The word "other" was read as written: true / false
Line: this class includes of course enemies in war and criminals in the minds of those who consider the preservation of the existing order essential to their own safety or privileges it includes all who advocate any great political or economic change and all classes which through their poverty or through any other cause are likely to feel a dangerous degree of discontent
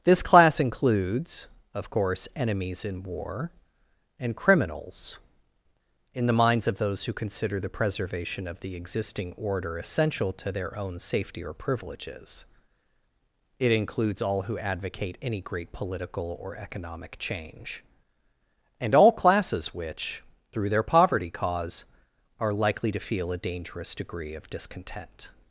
false